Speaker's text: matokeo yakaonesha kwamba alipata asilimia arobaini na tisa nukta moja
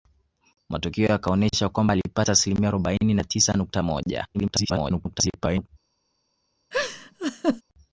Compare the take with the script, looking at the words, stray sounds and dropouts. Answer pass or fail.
fail